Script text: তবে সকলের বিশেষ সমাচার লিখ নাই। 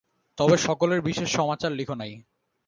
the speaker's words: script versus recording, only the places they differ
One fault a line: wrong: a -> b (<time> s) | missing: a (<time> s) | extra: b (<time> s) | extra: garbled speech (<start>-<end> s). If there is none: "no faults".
no faults